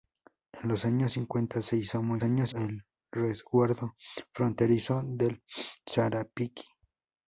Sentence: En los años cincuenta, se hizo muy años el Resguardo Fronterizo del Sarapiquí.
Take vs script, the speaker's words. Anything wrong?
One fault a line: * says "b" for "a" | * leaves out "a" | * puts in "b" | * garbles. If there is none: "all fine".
all fine